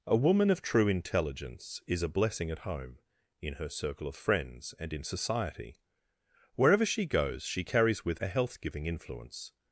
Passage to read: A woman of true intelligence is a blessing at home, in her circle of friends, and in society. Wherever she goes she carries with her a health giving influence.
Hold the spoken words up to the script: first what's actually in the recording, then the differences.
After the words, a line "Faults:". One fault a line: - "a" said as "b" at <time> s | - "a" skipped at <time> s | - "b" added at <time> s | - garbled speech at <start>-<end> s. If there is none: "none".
A woman of true intelligence is a blessing at home, in her circle of friends, and in society. Wherever she goes she carries with a health giving influence.
Faults:
- "her" skipped at 8.2 s